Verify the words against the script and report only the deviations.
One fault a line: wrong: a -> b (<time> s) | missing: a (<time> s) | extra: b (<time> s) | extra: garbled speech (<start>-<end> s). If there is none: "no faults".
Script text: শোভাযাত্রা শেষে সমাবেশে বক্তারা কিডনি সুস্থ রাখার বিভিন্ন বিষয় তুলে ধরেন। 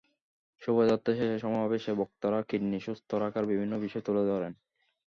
no faults